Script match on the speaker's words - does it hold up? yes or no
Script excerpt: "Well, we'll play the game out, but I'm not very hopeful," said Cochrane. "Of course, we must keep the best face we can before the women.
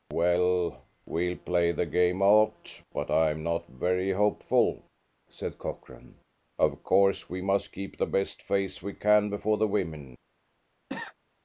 yes